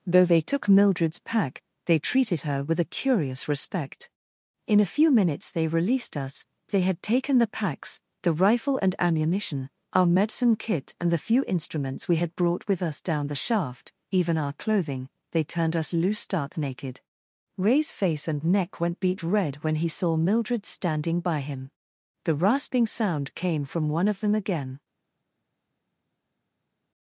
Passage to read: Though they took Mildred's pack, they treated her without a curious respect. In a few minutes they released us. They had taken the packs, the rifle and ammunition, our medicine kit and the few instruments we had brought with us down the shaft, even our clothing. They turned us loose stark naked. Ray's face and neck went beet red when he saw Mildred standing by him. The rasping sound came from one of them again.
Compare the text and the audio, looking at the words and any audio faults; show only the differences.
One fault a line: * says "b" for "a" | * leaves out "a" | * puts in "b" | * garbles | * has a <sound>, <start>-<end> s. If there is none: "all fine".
* says "with" for "without"